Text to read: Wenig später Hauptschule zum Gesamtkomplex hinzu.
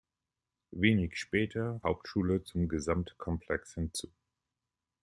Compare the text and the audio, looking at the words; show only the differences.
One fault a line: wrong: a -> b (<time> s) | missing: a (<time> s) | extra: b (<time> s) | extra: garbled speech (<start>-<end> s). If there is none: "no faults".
no faults